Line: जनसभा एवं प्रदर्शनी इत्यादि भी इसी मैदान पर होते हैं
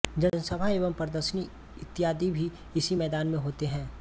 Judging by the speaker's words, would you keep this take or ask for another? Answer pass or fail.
fail